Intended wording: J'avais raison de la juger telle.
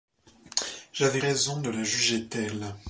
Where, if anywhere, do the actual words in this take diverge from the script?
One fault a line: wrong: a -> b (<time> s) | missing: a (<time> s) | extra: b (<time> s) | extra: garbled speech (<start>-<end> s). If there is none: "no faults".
no faults